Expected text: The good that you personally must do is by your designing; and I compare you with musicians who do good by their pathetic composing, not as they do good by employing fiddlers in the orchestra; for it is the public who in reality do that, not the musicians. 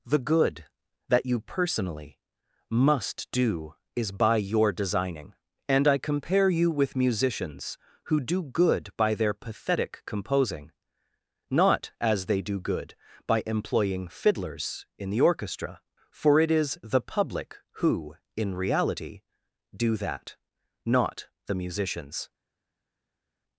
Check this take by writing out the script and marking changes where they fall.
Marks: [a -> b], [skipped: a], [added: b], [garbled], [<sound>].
The good that you personally must do is by your designing; and I compare you with musicians who do good by their pathetic composing, not as they do good by employing fiddlers in the orchestra; for it is the public who in reality do that, not the musicians.